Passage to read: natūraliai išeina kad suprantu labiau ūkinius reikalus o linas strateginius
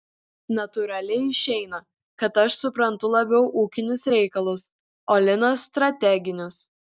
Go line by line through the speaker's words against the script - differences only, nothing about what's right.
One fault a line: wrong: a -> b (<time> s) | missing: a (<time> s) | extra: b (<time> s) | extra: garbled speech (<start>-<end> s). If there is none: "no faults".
extra: aš (2.5 s)